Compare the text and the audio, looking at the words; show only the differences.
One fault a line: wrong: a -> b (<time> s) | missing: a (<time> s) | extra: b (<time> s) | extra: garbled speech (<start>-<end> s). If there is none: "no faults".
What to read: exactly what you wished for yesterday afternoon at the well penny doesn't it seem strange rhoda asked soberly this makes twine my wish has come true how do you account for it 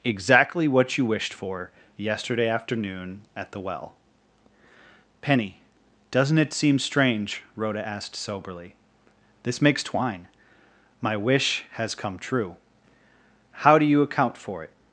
no faults